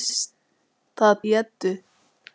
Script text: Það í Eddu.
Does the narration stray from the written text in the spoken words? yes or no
no